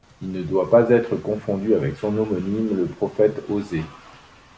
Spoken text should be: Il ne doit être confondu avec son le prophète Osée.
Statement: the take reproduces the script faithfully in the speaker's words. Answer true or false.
false